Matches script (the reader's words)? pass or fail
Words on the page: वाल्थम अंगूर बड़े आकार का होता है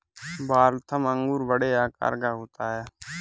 pass